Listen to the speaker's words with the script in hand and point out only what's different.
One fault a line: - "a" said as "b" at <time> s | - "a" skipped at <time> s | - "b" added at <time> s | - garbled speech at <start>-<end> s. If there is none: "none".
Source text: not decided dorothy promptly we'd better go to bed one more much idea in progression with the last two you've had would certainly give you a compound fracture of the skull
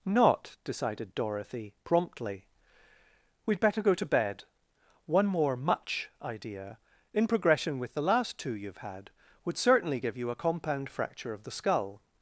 none